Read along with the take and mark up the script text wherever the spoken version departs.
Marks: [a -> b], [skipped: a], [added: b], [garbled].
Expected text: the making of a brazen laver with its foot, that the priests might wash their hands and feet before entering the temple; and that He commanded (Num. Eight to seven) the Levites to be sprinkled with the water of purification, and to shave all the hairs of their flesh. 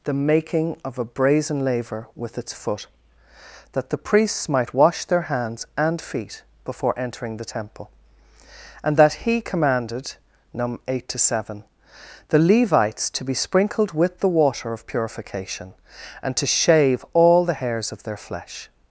the making of a brazen laver with its foot, that the priests might wash their hands and feet before entering the temple; and that He commanded (Num. Eight to seven) the Levites to be sprinkled with the water of purification, and to shave all the hairs of their flesh.